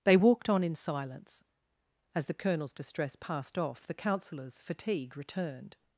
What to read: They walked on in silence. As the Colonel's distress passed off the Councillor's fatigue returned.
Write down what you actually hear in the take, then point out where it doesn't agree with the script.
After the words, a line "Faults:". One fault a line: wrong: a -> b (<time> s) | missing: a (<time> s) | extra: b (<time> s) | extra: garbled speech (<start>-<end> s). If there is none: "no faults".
They walked on in silence. As the Colonel's distress passed off the Councillor's fatigue returned.
Faults:
no faults